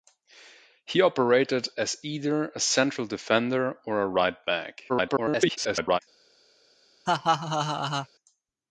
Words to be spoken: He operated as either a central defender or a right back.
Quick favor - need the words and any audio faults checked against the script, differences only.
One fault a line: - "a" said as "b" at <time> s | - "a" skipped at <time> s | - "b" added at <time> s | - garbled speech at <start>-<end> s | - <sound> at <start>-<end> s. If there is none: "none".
- garbled speech at 4.9-6.0 s
- laugh at 7.1-8.1 s